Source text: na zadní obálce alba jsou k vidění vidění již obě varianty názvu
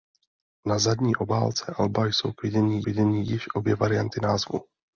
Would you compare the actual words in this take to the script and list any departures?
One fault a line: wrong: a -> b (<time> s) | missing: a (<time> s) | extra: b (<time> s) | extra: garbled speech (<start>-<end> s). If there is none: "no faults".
no faults